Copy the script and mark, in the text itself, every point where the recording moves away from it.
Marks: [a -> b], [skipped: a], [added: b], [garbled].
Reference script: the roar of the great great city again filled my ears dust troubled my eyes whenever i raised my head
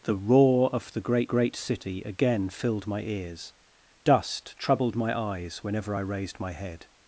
the roar of the great great city again filled my ears dust troubled my eyes whenever i raised my head